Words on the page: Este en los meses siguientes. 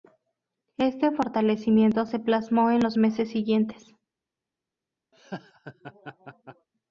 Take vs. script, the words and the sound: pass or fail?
fail